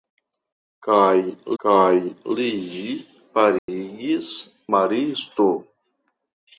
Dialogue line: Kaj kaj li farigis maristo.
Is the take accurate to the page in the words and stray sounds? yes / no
no